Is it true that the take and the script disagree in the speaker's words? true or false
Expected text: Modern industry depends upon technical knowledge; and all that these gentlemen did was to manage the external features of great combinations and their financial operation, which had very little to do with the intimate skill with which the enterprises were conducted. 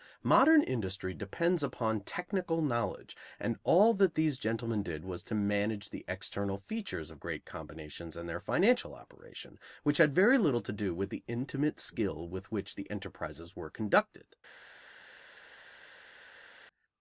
false